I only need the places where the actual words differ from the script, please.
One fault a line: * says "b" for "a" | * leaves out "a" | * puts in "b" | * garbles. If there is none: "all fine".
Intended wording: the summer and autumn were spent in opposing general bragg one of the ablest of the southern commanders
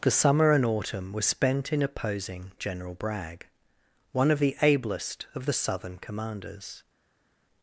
all fine